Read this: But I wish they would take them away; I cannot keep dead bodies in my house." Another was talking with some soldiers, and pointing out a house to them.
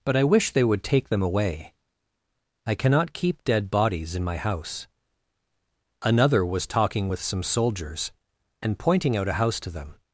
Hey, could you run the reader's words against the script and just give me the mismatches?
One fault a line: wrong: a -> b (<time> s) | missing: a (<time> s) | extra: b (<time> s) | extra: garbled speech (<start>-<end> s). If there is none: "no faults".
no faults